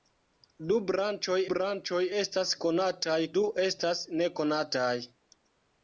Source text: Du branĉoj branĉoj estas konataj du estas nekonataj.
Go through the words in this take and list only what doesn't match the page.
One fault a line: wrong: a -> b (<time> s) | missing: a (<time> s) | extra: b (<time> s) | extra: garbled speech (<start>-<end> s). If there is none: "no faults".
no faults